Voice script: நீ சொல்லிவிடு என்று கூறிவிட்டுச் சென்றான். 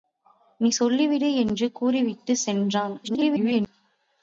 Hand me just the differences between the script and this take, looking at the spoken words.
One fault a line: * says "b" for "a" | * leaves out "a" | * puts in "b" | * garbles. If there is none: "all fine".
* garbles